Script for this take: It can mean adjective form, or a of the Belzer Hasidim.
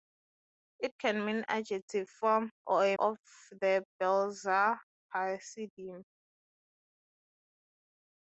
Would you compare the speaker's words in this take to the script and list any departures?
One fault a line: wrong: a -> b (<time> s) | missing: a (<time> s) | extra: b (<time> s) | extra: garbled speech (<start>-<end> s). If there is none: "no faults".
no faults